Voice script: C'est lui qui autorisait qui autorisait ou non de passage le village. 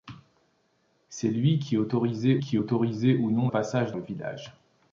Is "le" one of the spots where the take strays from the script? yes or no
no